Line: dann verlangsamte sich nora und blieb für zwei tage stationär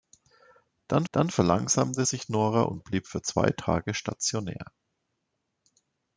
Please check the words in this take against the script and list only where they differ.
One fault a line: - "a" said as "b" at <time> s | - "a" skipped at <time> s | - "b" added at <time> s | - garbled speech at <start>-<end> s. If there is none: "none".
- "dann" added at 1.1 s